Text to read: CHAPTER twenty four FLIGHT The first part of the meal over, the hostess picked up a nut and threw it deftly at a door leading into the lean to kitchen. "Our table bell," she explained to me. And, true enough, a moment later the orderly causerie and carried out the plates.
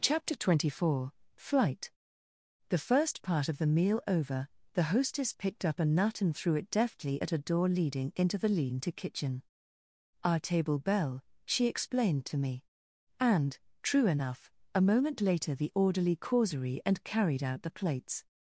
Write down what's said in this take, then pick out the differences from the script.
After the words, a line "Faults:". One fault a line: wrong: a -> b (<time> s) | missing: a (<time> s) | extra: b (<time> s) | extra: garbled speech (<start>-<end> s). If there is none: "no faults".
CHAPTER twenty four FLIGHT The first part of the meal over, the hostess picked up a nut and threw it deftly at a door leading into the lean to kitchen. "Our table bell," she explained to me. And, true enough, a moment later the orderly causerie and carried out the plates.
Faults:
no faults